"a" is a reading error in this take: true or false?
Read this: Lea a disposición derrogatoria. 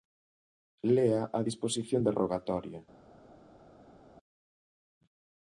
false